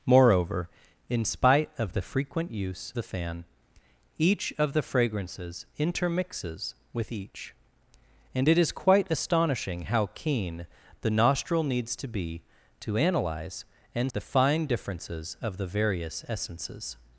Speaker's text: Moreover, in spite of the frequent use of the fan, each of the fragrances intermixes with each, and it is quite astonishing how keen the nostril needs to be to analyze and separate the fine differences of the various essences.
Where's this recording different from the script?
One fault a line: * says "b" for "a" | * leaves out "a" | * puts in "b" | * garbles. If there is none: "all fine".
* leaves out "of"
* leaves out "separate"